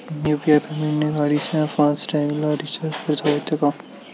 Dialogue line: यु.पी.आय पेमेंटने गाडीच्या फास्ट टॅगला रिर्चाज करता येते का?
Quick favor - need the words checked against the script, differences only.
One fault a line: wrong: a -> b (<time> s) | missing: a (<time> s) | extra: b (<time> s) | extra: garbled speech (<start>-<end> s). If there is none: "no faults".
no faults